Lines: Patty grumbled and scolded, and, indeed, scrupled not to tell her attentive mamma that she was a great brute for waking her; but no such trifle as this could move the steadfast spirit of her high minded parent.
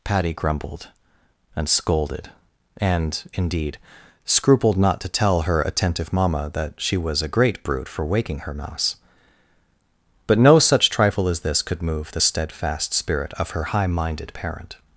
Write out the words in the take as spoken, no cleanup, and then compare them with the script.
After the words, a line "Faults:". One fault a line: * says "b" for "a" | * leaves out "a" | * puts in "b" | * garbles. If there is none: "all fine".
Patty grumbled and scolded, and, indeed, scrupled not to tell her attentive mamma that she was a great brute for waking her; mouse but no such trifle as this could move the steadfast spirit of her high minded parent.
Faults:
* puts in "mouse"